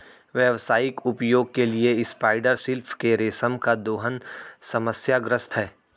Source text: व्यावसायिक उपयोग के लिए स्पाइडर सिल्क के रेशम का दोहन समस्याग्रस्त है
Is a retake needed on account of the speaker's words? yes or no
no